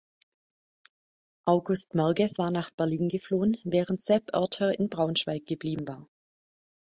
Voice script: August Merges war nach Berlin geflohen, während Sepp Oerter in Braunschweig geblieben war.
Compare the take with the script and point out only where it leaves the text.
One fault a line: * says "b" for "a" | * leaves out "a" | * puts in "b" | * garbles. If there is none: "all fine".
all fine